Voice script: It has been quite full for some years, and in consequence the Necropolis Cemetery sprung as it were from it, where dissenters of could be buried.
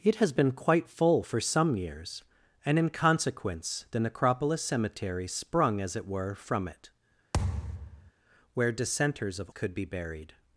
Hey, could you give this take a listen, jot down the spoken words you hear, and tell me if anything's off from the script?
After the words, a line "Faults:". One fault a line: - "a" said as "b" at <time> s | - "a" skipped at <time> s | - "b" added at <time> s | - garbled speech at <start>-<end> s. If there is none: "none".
It has been quite full for some years, and in consequence the Necropolis Cemetery sprung as it were from it, where dissenters of could be buried.
Faults:
none